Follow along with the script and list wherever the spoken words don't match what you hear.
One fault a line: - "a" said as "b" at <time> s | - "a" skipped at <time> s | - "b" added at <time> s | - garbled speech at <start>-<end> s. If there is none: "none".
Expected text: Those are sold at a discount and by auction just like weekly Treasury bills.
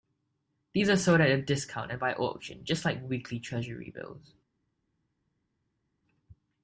- "Those" said as "These" at 0.7 s